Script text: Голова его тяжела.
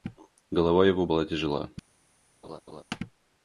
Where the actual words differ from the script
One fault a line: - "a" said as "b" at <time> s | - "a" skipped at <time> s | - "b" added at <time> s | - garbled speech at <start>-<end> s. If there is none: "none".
- "была" added at 1.0 s